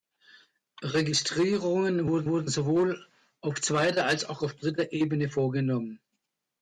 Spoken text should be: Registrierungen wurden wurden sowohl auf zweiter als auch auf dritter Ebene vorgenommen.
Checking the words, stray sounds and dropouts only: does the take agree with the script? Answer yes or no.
yes